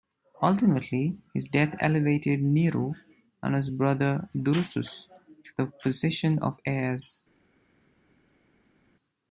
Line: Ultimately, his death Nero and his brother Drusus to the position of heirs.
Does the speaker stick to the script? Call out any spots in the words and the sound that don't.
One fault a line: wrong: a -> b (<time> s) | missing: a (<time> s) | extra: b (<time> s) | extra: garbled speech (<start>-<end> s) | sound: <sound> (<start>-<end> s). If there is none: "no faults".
extra: elevated (1.8 s)